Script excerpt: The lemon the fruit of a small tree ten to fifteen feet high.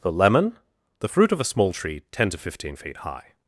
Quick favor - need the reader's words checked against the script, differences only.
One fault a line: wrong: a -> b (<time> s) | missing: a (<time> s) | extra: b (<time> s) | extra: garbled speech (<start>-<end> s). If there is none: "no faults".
no faults